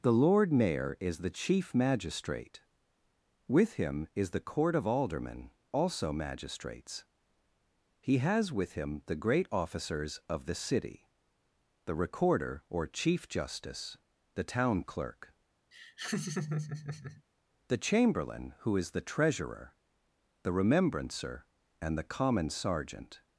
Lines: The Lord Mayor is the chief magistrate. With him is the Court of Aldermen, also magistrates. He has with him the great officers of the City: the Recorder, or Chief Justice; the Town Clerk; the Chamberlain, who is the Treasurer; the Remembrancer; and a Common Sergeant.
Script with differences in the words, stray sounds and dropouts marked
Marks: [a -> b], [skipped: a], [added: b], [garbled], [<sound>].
The Lord Mayor is the chief magistrate. With him is the Court of Aldermen, also magistrates. He has with him the great officers of the City: the Recorder, or Chief Justice; the Town Clerk; [laugh] the Chamberlain, who is the Treasurer; the Remembrancer; and [a -> the] Common Sergeant.